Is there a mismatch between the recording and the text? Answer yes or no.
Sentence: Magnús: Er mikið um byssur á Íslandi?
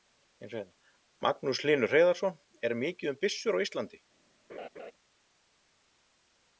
yes